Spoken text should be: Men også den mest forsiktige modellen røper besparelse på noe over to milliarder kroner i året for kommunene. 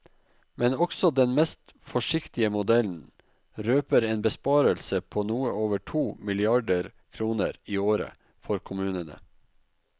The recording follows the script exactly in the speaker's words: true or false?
false